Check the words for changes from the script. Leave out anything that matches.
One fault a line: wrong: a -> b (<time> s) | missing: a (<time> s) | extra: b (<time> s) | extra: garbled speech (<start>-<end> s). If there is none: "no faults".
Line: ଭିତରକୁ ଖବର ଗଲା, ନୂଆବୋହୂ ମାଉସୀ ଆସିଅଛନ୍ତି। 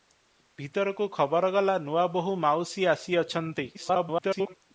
extra: garbled speech (3.7-4.5 s)